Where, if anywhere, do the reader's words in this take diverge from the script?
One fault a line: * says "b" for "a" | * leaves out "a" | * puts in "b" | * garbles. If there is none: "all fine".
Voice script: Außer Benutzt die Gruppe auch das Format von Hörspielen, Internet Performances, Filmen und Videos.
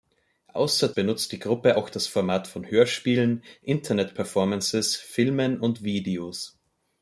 all fine